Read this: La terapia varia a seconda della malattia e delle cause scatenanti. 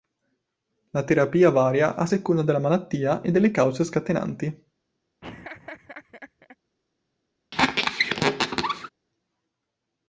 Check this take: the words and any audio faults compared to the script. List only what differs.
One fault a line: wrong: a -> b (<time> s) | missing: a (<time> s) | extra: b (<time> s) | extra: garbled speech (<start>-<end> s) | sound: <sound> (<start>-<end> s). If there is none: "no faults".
sound: laugh (5.2-6.6 s)
sound: squeak (7.5-8.9 s)